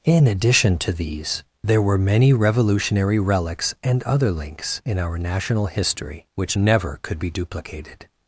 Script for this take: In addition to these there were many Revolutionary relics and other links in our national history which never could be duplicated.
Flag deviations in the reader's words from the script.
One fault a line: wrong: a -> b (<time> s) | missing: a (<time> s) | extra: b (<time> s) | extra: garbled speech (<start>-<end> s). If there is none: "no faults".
no faults